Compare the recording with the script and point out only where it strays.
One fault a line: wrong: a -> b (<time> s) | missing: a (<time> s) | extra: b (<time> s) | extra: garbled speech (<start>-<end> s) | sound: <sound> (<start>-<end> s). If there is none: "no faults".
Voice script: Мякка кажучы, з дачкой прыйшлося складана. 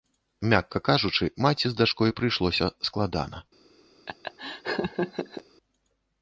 extra: маці (1.4 s)
sound: laugh (4.1-5.4 s)